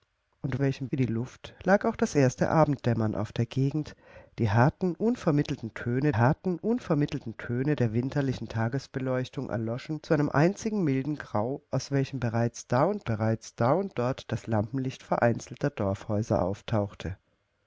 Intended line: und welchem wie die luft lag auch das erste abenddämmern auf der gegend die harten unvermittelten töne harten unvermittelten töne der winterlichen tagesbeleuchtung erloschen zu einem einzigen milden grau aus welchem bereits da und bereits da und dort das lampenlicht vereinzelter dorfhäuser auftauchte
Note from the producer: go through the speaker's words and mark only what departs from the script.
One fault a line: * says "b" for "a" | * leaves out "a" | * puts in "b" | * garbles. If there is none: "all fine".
all fine